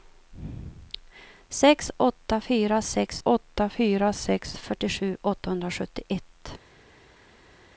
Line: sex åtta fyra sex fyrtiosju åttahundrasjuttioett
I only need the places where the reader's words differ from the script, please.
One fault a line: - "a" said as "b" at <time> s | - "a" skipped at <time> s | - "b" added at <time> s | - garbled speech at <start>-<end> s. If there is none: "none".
- "åtta fyra sex" added at 3.2 s